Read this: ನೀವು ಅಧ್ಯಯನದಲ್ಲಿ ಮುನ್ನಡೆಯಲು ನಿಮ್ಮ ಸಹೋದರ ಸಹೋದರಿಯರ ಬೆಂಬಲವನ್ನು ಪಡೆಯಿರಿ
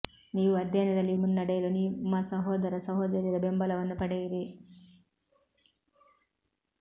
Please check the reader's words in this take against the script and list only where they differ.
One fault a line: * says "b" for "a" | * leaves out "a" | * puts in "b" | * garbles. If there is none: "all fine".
all fine